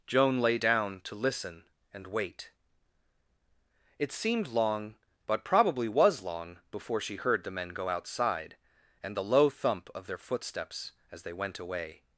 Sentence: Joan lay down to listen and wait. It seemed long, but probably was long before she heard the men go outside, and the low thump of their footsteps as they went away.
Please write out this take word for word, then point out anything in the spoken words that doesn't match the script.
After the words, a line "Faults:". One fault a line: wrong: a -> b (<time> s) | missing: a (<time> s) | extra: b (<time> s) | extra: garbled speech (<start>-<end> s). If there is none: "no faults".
Joan lay down to listen and wait. It seemed long, but probably was long before she heard the men go outside, and the low thump of their footsteps as they went away.
Faults:
no faults